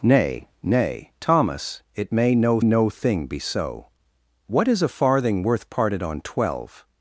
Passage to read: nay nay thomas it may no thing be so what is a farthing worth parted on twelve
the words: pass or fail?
fail